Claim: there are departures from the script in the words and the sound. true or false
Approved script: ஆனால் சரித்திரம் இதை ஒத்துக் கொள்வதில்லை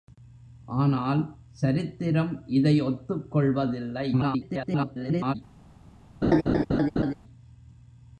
true